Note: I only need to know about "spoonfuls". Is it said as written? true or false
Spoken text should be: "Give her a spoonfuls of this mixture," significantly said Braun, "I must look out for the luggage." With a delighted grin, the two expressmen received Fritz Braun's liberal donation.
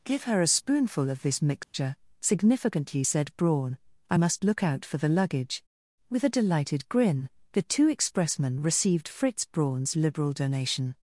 false